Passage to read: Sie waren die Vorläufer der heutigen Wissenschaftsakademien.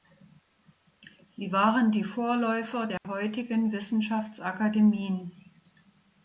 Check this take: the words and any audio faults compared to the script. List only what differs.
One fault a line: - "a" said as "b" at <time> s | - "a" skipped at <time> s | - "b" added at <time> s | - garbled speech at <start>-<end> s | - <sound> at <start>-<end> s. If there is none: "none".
- dropout at 3.0-3.0 s